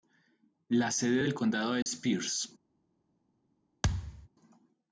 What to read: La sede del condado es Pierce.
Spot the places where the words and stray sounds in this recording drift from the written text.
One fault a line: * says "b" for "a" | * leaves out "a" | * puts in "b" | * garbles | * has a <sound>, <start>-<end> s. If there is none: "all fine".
* has a dropout, 1.8-1.9 s
* has a thud, 3.8-4.3 s